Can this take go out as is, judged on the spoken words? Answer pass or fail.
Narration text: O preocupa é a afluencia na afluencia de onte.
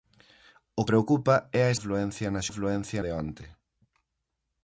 pass